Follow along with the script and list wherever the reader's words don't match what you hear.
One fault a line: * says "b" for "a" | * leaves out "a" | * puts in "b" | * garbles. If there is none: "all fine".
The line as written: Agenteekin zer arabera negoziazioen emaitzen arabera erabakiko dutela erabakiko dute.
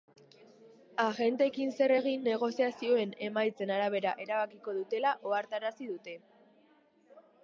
* says "egin" for "arabera"
* says "ohartarazi" for "erabakiko"